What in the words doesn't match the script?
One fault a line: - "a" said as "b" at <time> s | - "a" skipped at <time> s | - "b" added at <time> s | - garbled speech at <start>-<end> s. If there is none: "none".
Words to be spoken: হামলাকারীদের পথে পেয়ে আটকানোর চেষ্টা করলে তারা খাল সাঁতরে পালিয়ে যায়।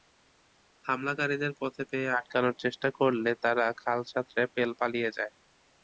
none